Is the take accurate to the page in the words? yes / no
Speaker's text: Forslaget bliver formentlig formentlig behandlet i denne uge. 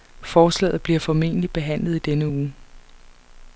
no